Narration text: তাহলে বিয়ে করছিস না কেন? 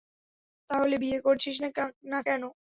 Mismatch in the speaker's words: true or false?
false